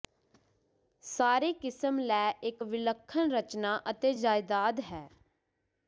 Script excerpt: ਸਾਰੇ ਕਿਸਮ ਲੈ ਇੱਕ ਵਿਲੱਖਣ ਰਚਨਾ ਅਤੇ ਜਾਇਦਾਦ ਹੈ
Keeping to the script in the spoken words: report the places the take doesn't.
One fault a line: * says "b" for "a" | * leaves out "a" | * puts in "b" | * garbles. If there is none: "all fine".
all fine